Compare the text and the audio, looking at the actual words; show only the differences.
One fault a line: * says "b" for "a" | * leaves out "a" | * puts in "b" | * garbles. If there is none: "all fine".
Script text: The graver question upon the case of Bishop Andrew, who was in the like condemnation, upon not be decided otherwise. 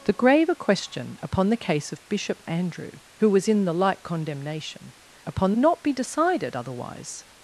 all fine